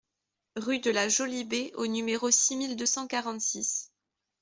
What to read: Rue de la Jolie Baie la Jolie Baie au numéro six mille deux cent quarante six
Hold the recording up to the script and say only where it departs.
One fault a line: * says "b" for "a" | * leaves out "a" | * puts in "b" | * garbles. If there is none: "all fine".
* leaves out "la Jolie Baie"